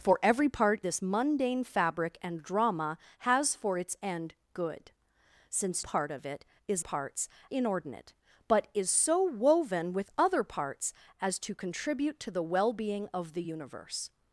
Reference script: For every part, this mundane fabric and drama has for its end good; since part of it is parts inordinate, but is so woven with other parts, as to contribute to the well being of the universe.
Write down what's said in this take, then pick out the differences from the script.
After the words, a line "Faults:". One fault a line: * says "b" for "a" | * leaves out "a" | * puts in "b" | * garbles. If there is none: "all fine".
For every part, this mundane fabric and drama has for its end good; since part of it is parts inordinate, but is so woven with other parts, as to contribute to the well being of the universe.
Faults:
all fine